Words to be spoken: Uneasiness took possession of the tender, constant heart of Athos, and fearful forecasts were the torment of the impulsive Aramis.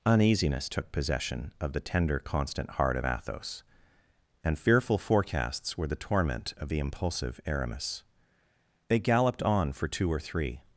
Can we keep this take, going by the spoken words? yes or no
no